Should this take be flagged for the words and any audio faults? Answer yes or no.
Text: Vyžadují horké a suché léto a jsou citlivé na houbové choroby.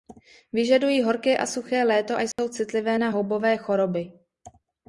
yes